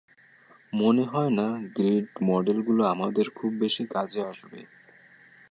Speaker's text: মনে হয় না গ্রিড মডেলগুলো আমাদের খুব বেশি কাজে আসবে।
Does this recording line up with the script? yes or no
yes